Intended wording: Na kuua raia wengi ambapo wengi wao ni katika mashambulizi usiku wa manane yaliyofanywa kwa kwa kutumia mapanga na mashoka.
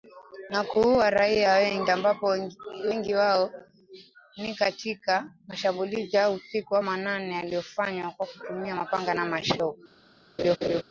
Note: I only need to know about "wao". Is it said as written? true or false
true